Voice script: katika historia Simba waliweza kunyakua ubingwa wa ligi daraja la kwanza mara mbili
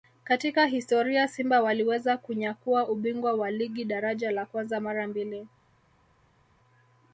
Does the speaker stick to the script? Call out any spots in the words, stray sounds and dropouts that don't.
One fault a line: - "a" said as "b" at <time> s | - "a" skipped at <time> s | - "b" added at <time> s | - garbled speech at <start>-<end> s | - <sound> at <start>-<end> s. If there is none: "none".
none